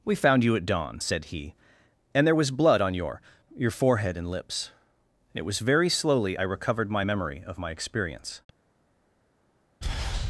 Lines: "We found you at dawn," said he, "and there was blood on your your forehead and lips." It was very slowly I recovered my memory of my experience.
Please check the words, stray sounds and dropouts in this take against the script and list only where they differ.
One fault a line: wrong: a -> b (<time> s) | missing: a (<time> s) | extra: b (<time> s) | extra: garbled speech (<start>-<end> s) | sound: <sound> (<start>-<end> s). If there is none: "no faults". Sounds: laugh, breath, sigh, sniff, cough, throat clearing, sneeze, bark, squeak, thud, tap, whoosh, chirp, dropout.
no faults